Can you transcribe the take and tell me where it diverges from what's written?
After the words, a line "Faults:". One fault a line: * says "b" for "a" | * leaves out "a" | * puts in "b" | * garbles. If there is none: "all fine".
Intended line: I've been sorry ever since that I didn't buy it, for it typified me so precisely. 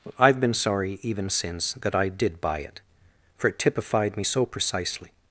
I've been sorry even since that I did buy it, for it typified me so precisely.
Faults:
* says "even" for "ever"
* says "did" for "didn't"